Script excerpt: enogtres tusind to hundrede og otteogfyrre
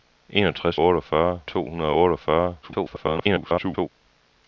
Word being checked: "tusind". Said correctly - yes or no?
no